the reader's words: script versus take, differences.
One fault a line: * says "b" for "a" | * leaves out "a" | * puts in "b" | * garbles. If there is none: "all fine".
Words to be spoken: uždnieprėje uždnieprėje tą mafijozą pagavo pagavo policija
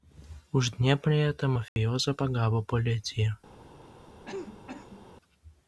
* leaves out "uždnieprėje"
* leaves out "pagavo"